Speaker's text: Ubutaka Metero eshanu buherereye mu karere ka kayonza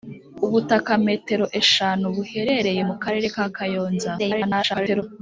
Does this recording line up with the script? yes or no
no